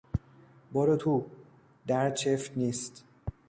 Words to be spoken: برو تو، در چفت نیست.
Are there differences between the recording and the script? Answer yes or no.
no